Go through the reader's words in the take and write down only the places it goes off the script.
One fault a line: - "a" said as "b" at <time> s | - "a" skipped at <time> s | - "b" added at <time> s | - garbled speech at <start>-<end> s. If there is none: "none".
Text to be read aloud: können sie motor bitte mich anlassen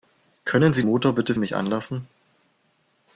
none